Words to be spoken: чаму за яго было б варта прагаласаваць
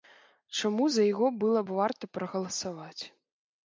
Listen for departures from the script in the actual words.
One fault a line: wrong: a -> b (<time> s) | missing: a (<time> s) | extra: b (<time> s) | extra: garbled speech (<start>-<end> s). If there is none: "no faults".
no faults